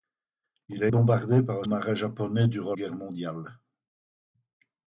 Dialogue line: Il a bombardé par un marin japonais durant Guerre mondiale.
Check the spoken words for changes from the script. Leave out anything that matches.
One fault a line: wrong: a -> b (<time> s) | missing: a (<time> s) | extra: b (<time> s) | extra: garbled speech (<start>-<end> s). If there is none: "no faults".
no faults